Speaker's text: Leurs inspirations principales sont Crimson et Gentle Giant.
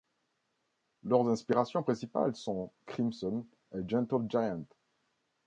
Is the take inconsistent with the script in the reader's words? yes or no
no